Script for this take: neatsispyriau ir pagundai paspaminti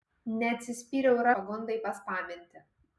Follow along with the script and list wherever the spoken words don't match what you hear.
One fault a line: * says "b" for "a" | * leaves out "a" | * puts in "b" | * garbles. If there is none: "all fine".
all fine